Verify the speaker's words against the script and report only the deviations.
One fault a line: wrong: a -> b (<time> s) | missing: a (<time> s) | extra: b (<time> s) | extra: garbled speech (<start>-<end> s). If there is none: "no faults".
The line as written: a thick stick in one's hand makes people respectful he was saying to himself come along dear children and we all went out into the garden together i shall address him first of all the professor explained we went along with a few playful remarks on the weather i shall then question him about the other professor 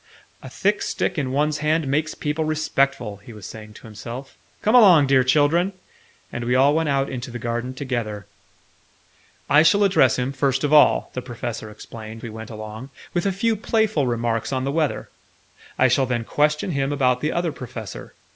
no faults